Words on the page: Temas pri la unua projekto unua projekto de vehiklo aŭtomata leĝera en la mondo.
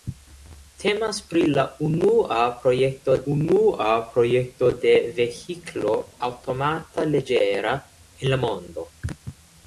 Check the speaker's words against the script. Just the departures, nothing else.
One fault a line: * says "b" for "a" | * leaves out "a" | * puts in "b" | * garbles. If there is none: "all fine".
all fine